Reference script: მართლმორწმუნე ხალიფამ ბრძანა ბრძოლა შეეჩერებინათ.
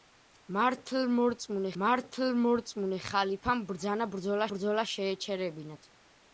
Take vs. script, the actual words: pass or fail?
fail